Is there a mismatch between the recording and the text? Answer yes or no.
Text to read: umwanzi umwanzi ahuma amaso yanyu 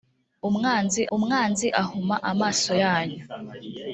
no